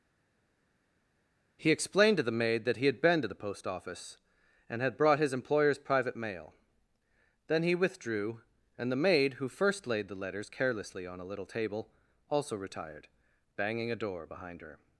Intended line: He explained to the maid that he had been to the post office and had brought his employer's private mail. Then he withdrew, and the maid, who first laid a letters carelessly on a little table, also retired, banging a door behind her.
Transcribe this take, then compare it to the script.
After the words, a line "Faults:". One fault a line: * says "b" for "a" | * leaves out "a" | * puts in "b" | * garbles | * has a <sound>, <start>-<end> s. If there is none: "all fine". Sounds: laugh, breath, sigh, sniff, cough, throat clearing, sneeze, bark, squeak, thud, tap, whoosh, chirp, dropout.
He explained to the maid that he had been to the post office and had brought his employer's private mail. Then he withdrew, and the maid, who first laid the letters carelessly on a little table, also retired, banging a door behind her.
Faults:
* says "the" for "a"